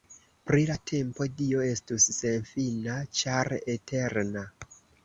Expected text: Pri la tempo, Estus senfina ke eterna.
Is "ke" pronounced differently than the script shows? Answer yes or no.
yes